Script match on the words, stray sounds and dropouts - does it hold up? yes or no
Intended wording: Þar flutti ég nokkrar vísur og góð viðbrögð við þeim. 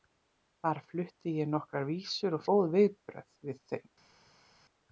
yes